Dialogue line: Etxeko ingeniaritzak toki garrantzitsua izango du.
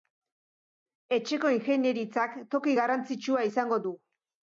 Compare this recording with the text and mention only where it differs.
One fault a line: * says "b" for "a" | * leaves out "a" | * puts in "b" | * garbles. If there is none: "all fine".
all fine